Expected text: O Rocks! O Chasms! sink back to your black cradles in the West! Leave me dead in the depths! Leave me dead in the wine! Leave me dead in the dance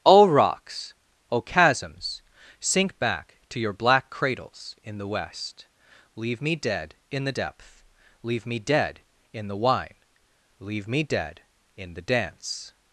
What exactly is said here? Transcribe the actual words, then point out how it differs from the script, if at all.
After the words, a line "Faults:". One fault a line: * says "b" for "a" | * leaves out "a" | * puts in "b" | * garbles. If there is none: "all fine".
O Rocks! O Chasms! sink back to your black cradles in the West! Leave me dead in the depth! Leave me dead in the wine! Leave me dead in the dance
Faults:
* says "depth" for "depths"